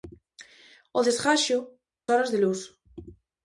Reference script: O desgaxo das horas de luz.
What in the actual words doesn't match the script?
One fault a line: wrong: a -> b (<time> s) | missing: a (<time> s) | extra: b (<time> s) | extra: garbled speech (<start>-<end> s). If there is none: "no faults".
missing: das (1.6 s)